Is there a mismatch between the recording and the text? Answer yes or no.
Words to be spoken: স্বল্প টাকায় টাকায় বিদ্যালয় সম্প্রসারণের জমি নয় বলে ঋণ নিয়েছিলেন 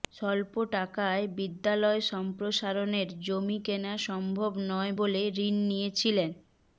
yes